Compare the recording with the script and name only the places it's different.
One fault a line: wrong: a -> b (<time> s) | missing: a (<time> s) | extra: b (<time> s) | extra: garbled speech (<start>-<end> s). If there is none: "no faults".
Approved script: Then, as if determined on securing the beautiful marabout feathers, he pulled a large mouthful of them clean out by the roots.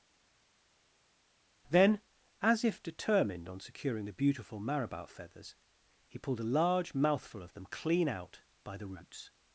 no faults